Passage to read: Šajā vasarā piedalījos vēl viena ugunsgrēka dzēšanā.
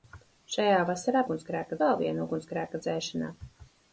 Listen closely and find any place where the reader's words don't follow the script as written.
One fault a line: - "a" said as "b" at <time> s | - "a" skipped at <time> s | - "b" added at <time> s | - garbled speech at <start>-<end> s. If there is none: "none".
- "piedalījos" said as "ugunsgrēka" at 1.2 s